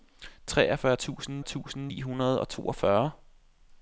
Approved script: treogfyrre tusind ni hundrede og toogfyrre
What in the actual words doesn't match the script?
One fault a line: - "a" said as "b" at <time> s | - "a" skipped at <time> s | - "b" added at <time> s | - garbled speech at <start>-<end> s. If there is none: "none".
- "tusind" added at 1.4 s